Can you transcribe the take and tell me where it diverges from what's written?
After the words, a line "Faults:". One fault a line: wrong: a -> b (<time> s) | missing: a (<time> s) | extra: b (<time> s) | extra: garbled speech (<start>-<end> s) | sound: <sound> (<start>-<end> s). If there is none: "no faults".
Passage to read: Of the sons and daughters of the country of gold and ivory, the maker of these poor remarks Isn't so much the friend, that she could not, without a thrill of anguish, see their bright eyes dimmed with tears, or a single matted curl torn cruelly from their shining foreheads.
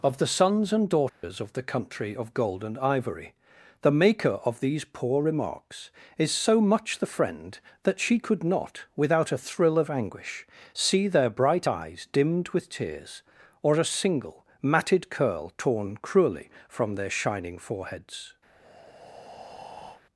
Of the sons and daughters of the country of gold and ivory, the maker of these poor remarks Is so much the friend, that she could not, without a thrill of anguish, see their bright eyes dimmed with tears, or a single matted curl torn cruelly from their shining foreheads.
Faults:
sound: dropout (1.1-1.2 s)
wrong: Isn't -> Is (6.2 s)
sound: breath (18.5-20.0 s)